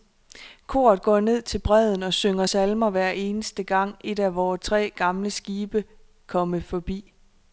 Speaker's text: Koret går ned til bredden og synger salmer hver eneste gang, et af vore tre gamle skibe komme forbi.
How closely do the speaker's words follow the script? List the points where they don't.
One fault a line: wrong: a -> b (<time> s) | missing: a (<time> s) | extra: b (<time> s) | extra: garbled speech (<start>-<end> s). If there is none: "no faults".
no faults